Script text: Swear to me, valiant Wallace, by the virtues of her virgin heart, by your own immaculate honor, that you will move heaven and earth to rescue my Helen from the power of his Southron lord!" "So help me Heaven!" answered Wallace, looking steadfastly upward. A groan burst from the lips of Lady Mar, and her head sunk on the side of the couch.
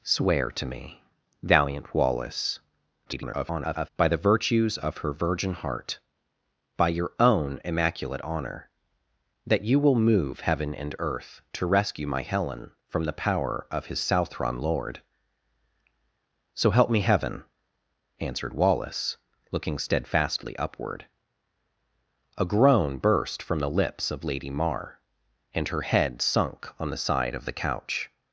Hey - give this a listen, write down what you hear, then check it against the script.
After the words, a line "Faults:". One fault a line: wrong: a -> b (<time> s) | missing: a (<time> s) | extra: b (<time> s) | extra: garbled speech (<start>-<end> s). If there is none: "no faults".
Swear to me, valiant Wallace, [garbled] by the virtues of her virgin heart, by your own immaculate honor, that you will move heaven and earth to rescue my Helen from the power of his Southron lord!" "So help me Heaven!" answered Wallace, looking steadfastly upward. A groan burst from the lips of Lady Mar, and her head sunk on the side of the couch.
Faults:
extra: garbled speech (3.1-3.9 s)